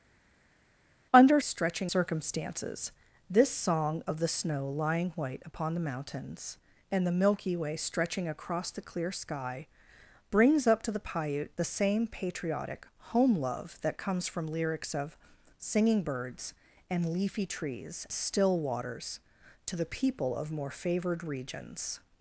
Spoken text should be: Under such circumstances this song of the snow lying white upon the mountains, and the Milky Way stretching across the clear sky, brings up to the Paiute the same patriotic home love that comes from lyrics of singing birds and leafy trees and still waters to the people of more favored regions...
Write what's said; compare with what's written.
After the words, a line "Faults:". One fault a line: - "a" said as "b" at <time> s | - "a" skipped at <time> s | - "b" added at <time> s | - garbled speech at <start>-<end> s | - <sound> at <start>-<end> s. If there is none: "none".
Under stretching circumstances this song of the snow lying white upon the mountains, and the Milky Way stretching across the clear sky, brings up to the Paiute the same patriotic home love that comes from lyrics of singing birds and leafy trees still waters to the people of more favored regions...
Faults:
- "such" said as "stretching" at 1.4 s
- "and" skipped at 18.1 s